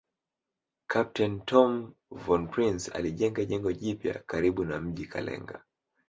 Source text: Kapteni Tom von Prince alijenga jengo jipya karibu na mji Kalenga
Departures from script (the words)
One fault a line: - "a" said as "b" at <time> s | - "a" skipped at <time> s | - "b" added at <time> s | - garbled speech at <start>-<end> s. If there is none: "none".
none